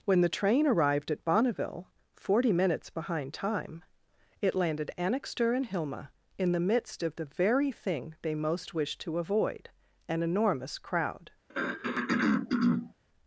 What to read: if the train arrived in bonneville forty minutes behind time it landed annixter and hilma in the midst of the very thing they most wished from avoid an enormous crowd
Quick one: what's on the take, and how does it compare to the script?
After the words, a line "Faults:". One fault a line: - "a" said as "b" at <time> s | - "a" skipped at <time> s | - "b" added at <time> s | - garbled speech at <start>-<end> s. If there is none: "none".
when the train arrived at bonneville forty minutes behind time it landed annixter and hilma in the midst of the very thing they most wished to avoid an enormous crowd
Faults:
- "if" said as "when" at 0.1 s
- "in" said as "at" at 1.1 s
- "from" said as "to" at 9.0 s